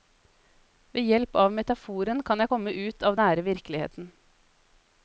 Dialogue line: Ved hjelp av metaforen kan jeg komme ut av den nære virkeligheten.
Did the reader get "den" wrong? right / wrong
wrong